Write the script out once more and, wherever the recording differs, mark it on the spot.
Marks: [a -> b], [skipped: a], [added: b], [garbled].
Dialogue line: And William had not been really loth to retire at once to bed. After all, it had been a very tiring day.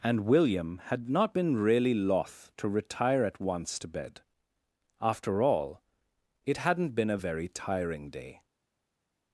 And William had not been really loth to retire at once to bed. After all, it [had -> hadn't] been a very tiring day.